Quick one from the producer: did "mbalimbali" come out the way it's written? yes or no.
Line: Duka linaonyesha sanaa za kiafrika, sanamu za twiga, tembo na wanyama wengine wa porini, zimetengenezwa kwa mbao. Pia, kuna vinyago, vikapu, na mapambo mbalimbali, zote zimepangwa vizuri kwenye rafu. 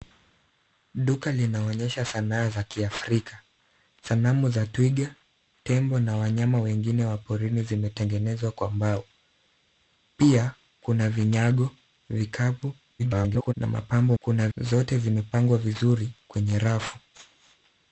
no